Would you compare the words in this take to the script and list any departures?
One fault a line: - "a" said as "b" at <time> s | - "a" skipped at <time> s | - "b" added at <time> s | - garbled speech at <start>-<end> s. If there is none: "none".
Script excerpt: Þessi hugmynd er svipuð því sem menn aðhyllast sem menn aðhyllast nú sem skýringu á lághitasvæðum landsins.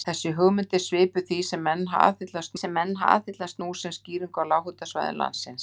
none